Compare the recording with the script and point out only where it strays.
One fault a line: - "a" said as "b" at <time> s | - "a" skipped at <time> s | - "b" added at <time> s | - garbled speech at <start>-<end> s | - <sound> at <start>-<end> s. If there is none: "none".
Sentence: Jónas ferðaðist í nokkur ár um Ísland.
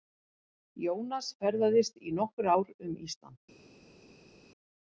none